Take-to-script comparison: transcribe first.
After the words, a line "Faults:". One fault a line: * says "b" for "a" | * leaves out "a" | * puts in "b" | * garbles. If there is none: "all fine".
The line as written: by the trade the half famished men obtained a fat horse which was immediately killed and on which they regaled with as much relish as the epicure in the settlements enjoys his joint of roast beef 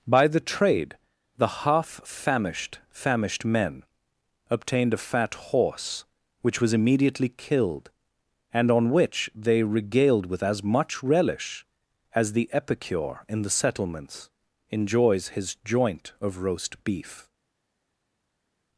by the trade the half famished famished men obtained a fat horse which was immediately killed and on which they regaled with as much relish as the epicure in the settlements enjoys his joint of roast beef
Faults:
* puts in "famished"